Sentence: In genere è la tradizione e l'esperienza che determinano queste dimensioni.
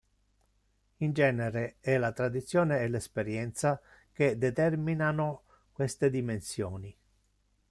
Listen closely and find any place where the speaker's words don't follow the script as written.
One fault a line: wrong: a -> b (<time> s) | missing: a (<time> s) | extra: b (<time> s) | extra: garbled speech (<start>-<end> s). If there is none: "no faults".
no faults